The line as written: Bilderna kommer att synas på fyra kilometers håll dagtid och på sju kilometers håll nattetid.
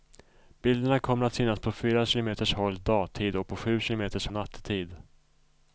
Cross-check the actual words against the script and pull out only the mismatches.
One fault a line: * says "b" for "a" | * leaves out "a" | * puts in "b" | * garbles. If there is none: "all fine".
* leaves out "håll"